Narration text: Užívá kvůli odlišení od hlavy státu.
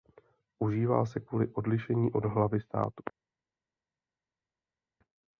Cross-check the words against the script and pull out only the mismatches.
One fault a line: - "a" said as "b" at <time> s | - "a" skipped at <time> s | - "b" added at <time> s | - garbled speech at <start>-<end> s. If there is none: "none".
- "se" added at 1.1 s